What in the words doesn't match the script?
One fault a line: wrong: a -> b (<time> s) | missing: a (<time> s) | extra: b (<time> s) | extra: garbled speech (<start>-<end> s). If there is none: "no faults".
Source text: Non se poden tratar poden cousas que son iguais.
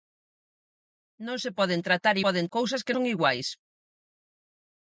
no faults